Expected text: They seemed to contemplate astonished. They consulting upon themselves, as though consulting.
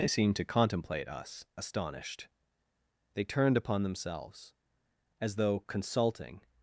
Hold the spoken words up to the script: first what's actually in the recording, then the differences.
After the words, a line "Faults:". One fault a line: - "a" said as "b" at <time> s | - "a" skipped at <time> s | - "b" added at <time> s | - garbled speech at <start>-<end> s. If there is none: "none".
They seemed to contemplate us, astonished. They turned upon themselves, as though consulting.
Faults:
- "us" added at 1.1 s
- "consulting" said as "turned" at 3.2 s